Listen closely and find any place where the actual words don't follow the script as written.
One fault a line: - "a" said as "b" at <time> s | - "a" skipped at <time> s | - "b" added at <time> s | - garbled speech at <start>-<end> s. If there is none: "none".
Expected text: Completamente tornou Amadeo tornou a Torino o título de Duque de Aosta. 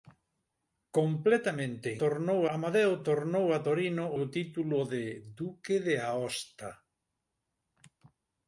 none